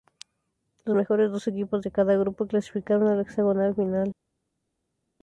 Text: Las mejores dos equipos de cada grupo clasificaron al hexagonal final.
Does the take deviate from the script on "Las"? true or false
true